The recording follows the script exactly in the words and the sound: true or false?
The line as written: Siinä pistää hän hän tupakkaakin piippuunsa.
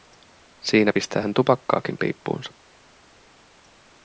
false